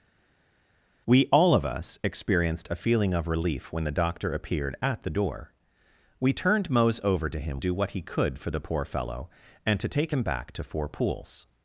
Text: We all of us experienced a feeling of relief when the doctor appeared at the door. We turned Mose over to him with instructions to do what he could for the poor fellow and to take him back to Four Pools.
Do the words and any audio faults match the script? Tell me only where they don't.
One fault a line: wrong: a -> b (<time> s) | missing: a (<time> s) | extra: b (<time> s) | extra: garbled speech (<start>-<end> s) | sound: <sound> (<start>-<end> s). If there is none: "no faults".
missing: with instructions to (7.6 s)